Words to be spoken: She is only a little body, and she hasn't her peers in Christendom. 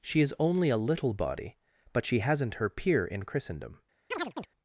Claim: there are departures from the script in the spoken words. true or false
true